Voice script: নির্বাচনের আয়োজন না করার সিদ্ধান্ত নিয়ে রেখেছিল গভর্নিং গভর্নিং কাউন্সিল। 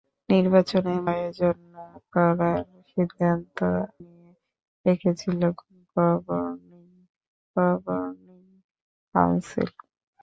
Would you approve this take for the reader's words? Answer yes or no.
yes